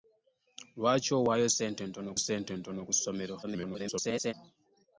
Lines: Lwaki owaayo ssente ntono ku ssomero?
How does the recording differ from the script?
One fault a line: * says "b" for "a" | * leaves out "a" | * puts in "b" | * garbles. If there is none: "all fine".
* puts in "ssente ntono"
* garbles